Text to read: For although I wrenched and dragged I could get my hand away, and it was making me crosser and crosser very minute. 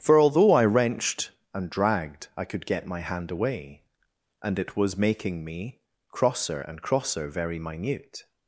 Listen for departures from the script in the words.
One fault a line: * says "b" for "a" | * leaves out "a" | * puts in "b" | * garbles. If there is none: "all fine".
all fine